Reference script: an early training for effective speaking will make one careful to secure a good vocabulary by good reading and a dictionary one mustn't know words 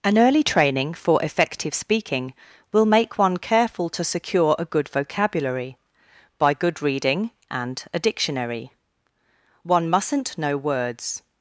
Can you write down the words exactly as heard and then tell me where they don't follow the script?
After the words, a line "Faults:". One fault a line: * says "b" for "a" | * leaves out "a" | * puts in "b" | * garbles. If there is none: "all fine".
an early training for effective speaking will make one careful to secure a good vocabulary by good reading and a dictionary one mustn't know words
Faults:
all fine